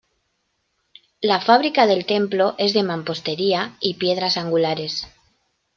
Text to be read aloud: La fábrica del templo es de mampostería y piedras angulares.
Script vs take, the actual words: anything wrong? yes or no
no